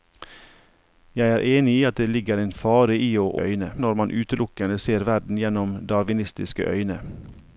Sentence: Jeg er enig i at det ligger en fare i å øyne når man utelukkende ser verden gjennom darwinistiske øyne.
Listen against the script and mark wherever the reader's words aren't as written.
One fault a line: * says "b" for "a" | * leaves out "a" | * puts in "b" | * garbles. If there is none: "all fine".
all fine